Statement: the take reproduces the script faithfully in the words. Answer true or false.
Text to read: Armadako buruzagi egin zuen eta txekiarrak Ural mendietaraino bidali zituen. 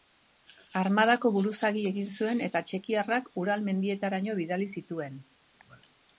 true